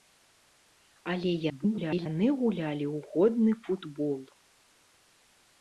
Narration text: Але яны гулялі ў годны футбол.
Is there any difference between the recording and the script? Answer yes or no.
yes